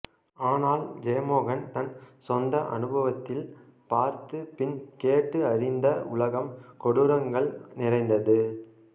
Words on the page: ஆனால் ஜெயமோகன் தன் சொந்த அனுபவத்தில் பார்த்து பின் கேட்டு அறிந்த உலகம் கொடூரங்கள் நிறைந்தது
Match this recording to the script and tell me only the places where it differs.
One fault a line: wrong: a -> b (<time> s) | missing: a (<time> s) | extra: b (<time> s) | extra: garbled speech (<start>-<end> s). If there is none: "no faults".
no faults